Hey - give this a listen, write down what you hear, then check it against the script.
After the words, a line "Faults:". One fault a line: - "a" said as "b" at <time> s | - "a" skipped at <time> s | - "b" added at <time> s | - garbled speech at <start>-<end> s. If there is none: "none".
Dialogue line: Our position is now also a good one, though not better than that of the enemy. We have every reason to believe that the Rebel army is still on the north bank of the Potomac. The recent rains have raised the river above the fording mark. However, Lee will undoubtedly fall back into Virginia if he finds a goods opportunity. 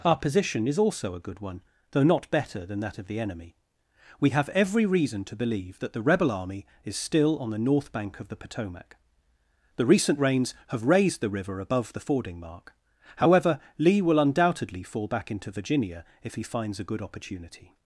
Our position is also a good one, though not better than that of the enemy. We have every reason to believe that the Rebel army is still on the north bank of the Potomac. The recent rains have raised the river above the fording mark. However, Lee will undoubtedly fall back into Virginia if he finds a good opportunity.
Faults:
- "now" skipped at 0.8 s
- "goods" said as "good" at 16.9 s